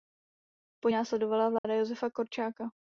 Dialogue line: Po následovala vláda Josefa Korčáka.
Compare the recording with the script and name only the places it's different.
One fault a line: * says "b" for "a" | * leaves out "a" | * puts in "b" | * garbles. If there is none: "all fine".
all fine